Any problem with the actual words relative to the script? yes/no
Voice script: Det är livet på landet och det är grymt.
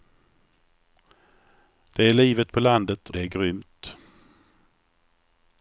yes